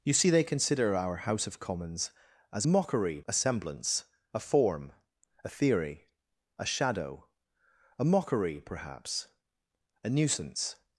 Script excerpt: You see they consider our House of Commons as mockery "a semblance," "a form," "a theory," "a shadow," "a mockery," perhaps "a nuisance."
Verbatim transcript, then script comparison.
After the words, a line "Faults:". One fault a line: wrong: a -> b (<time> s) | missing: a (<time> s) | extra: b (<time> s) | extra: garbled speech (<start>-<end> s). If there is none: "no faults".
You see they consider our House of Commons as mockery "a semblance," "a form," "a theory," "a shadow," "a mockery," perhaps "a nuisance."
Faults:
no faults